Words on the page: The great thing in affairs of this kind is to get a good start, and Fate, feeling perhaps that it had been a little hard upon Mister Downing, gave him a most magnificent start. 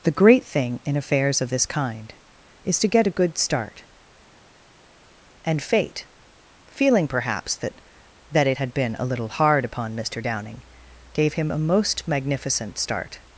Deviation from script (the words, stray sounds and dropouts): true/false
true